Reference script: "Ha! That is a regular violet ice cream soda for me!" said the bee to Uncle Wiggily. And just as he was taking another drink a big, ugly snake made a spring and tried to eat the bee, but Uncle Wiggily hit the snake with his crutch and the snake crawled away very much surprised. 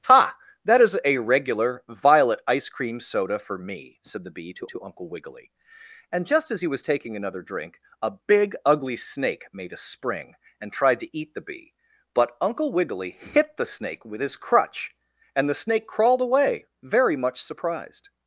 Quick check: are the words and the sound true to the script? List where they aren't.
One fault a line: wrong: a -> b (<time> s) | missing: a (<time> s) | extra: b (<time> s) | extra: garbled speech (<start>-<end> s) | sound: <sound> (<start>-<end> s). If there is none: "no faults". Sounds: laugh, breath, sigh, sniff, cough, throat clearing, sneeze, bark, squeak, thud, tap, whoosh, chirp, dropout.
extra: to (4.7 s)